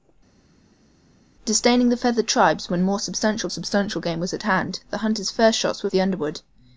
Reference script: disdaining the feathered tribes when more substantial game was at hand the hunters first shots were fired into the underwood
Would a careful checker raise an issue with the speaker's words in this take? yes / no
yes